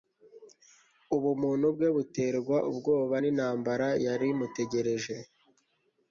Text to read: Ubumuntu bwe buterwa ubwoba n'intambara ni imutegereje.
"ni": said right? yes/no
no